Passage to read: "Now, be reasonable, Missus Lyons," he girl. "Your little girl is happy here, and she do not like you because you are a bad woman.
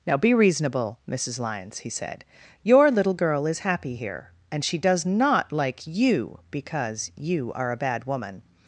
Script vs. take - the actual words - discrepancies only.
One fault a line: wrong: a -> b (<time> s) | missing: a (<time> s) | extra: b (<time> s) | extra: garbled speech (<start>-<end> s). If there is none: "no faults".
wrong: girl -> said (1.9 s)
wrong: do -> does (4.8 s)